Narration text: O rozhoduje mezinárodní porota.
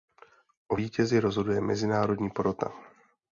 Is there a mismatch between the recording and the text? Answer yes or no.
yes